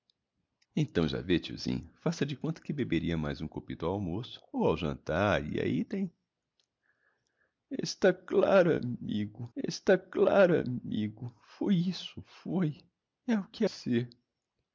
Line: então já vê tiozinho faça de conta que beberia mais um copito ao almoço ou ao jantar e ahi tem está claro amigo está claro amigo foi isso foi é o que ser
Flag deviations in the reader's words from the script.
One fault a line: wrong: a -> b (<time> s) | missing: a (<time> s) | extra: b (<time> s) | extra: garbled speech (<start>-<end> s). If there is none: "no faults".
no faults